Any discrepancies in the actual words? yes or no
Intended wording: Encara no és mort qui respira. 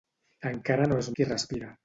yes